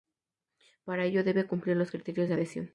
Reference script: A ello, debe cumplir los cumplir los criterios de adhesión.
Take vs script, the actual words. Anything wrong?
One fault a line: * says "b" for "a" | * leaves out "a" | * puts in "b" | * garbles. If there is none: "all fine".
* says "Para" for "A"
* leaves out "cumplir los"